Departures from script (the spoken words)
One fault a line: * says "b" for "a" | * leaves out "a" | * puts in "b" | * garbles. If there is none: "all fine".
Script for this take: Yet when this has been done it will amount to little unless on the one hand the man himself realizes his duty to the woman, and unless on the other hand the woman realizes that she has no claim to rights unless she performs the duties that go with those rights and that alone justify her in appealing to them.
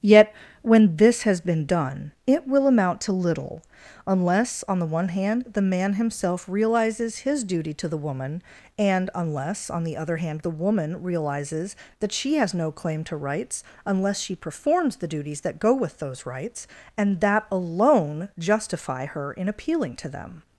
all fine